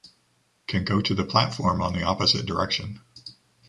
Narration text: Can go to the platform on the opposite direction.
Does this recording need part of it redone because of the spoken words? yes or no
no